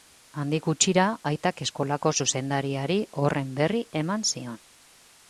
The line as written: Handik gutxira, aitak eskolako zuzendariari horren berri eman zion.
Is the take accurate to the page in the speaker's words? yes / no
yes